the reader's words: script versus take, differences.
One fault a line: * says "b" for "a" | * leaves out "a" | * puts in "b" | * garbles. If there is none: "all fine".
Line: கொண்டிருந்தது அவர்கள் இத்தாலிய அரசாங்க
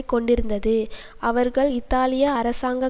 all fine